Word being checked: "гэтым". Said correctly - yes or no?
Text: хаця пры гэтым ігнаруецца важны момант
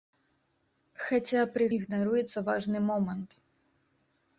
no